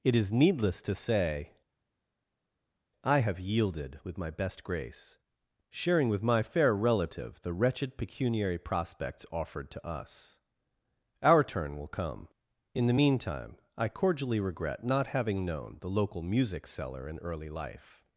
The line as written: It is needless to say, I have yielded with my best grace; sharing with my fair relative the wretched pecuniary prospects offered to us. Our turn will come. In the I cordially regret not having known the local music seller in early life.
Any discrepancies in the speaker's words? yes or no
yes